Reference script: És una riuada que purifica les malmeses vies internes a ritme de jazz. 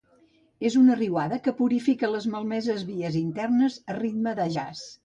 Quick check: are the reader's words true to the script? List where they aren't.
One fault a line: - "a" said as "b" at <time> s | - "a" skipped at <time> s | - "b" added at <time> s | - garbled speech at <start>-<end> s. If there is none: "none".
none